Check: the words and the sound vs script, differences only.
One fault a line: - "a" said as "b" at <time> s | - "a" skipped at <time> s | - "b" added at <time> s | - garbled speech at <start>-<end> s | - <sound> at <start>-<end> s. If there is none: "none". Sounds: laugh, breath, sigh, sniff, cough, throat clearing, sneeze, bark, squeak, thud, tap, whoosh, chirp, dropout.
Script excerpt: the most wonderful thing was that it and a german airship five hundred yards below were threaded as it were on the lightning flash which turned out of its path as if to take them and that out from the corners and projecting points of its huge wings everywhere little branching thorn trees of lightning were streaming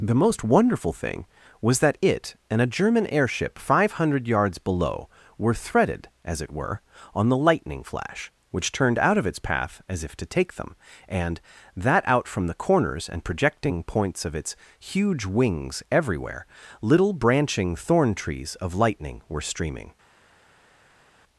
none